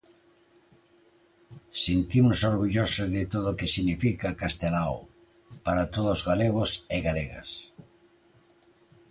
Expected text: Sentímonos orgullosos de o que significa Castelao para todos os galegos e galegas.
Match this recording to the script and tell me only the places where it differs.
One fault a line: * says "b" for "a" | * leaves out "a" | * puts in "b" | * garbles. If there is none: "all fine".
* puts in "todo"